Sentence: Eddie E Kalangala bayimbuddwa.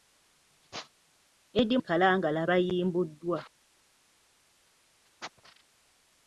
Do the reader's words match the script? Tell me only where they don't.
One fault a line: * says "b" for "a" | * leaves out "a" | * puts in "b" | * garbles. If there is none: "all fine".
all fine